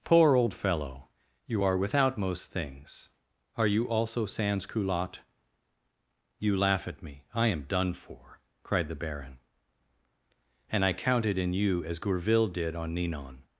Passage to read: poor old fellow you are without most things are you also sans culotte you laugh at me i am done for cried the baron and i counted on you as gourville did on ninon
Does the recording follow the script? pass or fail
fail